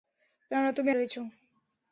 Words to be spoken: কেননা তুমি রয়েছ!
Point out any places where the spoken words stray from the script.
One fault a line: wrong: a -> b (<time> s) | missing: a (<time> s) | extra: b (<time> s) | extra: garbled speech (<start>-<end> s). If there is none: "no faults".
no faults